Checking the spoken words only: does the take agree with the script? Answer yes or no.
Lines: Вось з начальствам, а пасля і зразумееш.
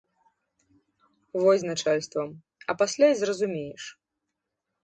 yes